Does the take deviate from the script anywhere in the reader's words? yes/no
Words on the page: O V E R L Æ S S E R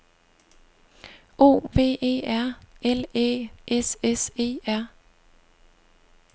no